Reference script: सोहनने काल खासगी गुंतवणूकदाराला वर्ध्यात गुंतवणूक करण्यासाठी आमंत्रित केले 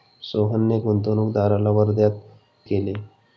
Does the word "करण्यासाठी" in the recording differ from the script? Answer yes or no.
yes